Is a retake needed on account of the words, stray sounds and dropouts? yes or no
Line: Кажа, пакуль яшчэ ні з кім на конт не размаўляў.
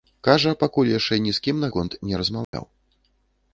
yes